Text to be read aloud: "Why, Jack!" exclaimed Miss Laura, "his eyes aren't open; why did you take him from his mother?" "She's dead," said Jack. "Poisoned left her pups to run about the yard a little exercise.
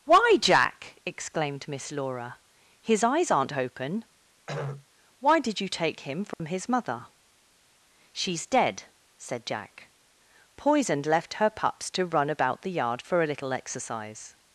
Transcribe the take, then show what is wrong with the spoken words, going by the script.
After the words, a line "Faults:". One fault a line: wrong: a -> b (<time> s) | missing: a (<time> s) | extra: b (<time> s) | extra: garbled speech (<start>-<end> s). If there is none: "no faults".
"Why, Jack!" exclaimed Miss Laura, "his eyes aren't open; why did you take him from his mother?" "She's dead," said Jack. "Poisoned left her pups to run about the yard for a little exercise.
Faults:
extra: for (13.0 s)